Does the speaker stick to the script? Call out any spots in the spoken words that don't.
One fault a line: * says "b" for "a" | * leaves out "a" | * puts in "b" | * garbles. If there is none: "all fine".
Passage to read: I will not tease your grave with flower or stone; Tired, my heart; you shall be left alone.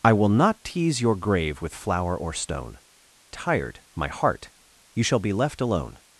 all fine